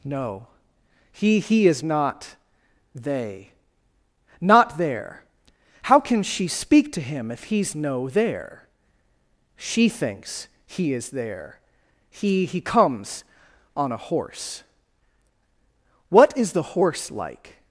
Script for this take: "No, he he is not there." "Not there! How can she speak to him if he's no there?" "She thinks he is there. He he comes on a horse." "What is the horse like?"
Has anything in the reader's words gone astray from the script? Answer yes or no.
yes